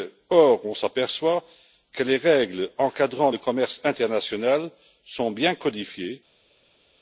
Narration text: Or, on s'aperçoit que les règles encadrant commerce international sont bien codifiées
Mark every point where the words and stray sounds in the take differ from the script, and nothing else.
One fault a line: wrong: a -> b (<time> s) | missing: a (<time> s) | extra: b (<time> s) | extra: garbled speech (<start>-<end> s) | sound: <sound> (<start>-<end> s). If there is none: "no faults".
extra: le (3.3 s)